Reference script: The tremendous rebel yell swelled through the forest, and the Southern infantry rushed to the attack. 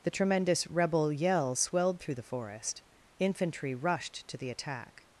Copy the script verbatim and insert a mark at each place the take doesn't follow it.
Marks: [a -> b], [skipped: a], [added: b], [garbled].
The tremendous rebel yell swelled through the forest, [skipped: and the Southern] infantry rushed to the attack.